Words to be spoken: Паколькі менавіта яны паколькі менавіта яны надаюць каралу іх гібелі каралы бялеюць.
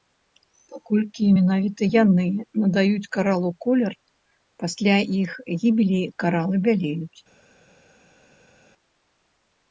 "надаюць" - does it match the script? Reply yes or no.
no